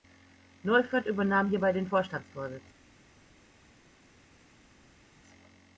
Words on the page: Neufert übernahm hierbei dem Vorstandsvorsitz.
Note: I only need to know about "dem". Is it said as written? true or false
false